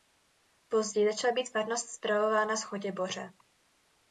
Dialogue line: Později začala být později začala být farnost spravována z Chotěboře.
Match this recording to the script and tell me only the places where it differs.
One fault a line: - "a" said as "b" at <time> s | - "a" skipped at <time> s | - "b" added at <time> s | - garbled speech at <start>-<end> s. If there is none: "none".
- "později začala být" skipped at 1.5 s